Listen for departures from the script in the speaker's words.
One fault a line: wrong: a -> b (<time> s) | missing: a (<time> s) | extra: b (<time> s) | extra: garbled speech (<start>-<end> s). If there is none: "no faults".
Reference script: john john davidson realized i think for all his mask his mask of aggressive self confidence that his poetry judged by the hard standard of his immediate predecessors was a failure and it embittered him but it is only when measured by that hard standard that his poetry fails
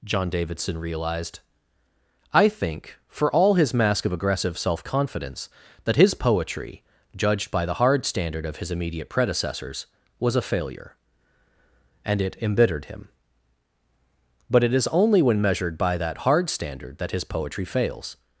missing: john (0.3 s)
missing: his mask (4.0 s)